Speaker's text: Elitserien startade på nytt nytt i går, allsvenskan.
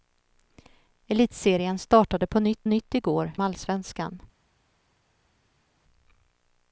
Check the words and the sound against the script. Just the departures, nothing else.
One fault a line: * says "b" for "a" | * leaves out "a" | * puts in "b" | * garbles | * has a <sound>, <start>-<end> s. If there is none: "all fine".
all fine